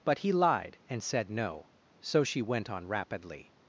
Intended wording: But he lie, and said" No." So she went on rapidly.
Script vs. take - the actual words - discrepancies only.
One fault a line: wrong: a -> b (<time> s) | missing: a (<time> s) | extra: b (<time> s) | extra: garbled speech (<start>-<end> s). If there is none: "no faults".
wrong: lie -> lied (0.3 s)